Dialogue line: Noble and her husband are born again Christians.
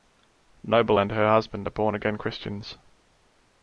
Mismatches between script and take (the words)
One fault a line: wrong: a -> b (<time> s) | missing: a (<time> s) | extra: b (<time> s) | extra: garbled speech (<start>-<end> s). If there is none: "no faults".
no faults